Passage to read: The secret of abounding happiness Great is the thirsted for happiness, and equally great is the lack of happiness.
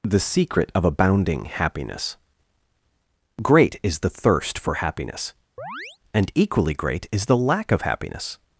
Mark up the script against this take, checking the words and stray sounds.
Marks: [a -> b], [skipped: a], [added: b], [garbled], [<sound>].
The secret of abounding happiness Great is the [thirsted -> thirst] for happiness, [chirp] and equally great is the lack of happiness.